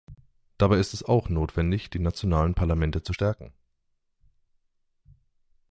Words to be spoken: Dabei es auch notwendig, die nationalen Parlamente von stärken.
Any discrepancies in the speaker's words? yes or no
yes